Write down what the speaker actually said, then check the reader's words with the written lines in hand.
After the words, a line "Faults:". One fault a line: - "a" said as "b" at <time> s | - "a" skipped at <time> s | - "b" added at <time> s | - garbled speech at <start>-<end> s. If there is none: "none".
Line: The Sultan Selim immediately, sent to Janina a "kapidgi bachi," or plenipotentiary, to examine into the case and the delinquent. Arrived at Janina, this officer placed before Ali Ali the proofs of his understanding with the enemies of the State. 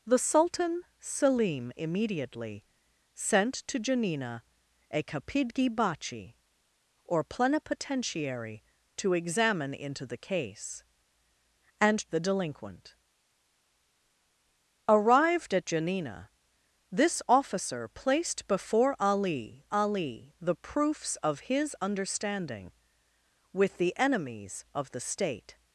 The Sultan Selim immediately, sent to Janina a "kapidgi bachi," or plenipotentiary, to examine into the case and the delinquent. Arrived at Janina, this officer placed before Ali Ali the proofs of his understanding with the enemies of the State.
Faults:
none